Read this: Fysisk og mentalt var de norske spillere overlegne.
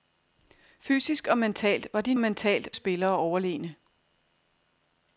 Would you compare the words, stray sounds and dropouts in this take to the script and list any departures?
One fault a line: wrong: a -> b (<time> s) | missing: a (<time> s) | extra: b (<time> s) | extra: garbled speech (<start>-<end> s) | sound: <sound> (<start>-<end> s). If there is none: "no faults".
wrong: norske -> mentalt (2.2 s)